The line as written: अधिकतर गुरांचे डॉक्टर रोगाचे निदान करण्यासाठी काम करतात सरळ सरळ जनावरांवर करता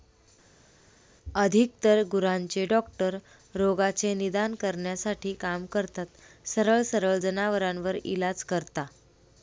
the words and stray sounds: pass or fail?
fail